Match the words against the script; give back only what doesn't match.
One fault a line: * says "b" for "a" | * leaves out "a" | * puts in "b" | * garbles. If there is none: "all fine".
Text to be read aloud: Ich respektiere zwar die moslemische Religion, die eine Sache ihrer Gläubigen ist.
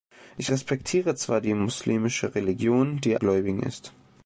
* leaves out "eine Sache ihrer"